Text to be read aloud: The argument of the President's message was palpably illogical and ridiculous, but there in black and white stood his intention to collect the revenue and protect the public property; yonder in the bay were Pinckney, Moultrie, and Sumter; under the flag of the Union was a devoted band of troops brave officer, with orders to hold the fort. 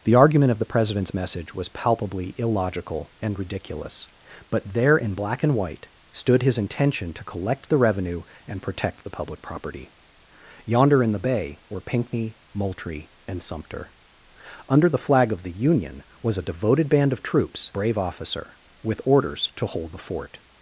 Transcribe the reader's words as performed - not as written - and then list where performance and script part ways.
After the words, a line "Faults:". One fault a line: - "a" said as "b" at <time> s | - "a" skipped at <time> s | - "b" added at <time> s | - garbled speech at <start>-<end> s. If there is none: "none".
The argument of the President's message was palpably illogical and ridiculous, but there in black and white stood his intention to collect the revenue and protect the public property; yonder in the bay were Pinckney, Moultrie, and Sumter; under the flag of the Union was a devoted band of troops brave officer, with orders to hold the fort.
Faults:
none